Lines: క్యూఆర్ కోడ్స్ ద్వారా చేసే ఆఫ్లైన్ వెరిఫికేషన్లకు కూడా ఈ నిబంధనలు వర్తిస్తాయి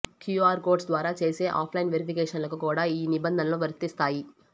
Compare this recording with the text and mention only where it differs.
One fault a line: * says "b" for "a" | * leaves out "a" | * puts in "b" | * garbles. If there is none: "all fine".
all fine